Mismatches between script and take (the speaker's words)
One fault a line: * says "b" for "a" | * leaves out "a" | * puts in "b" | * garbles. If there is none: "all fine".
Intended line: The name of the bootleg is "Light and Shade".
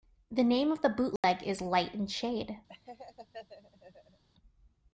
all fine